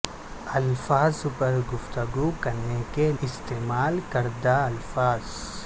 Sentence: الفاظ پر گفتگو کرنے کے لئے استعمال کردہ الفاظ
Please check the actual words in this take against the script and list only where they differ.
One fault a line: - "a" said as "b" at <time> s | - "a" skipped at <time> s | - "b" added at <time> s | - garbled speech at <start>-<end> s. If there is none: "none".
- "لئے" skipped at 3.1 s